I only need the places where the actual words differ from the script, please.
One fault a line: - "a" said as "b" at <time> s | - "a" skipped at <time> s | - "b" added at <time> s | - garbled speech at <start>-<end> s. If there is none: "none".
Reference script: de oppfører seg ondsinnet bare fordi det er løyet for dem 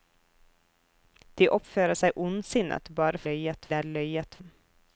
- "fordi" said as "løyet" at 3.3 s
- "for" skipped at 4.4 s